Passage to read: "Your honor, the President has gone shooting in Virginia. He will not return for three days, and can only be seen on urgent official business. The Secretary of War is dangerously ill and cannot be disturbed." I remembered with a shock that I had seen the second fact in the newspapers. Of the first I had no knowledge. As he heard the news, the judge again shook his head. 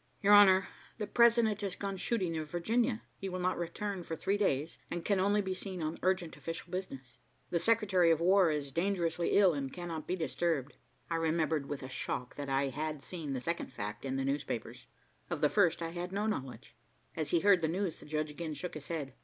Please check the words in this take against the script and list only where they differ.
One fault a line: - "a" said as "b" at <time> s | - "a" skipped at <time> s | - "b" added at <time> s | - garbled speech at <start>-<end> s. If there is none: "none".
none